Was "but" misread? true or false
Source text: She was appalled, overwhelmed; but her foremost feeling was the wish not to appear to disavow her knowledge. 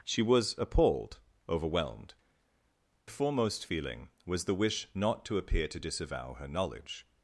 true